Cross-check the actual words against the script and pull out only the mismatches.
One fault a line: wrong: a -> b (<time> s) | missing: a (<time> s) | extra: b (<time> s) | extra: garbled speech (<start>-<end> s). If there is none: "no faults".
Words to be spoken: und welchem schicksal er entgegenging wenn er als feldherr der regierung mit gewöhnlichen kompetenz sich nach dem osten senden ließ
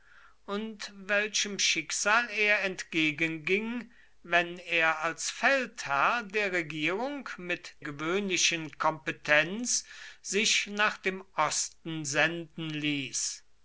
no faults